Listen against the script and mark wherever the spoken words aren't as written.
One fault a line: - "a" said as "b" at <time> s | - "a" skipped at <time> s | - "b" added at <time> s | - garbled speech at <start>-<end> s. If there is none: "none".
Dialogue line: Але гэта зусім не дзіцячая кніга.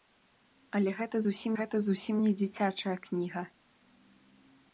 - "гэта зусім" added at 1.6 s